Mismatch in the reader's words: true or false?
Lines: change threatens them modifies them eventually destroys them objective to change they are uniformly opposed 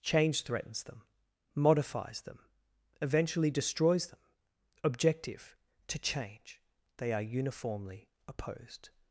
false